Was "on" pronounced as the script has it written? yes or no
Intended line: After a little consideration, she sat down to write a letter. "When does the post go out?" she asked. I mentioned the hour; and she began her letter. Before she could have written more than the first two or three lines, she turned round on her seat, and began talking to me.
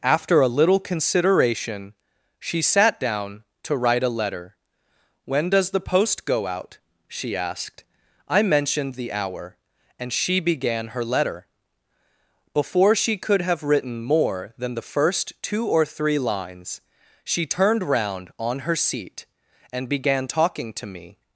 yes